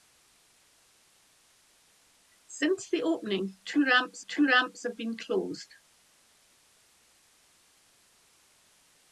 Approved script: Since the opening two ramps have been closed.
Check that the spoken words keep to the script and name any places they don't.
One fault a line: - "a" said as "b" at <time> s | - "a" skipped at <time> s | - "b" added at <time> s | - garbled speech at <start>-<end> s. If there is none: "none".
- "two ramps" added at 4.3 s